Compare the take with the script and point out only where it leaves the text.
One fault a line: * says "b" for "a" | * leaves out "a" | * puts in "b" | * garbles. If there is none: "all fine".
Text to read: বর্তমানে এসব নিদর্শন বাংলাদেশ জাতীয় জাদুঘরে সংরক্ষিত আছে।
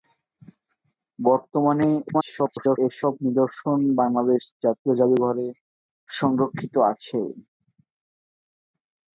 * garbles